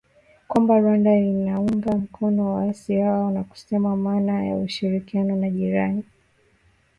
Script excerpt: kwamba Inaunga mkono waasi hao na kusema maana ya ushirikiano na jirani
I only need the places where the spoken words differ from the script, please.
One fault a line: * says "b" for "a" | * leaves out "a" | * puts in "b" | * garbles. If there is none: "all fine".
* puts in "Rwanda"